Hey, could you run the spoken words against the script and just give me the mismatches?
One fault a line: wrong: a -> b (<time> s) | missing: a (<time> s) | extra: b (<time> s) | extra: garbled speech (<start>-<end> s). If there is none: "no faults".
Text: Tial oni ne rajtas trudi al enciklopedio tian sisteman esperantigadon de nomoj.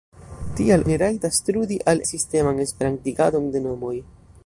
missing: oni (0.8 s)
missing: enciklopedio tian (2.0 s)